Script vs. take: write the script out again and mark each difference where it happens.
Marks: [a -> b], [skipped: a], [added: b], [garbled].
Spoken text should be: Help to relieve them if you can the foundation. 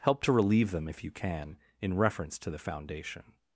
Help to relieve them if you can [added: in reference to] the foundation.